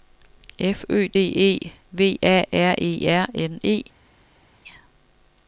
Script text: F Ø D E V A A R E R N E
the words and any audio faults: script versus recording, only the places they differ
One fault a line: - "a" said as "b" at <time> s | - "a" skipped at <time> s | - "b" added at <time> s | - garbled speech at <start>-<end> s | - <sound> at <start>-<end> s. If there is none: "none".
- "A" skipped at 2.4 s